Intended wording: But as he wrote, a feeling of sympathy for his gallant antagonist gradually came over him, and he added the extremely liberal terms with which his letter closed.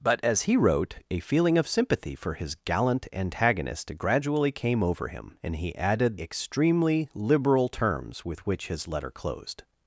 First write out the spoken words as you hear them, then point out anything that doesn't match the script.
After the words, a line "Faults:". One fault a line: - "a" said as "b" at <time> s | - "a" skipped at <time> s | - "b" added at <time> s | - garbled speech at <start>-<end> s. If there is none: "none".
But as he wrote, a feeling of sympathy for his gallant antagonist gradually came over him, and he added extremely liberal terms with which his letter closed.
Faults:
- "the" skipped at 6.2 s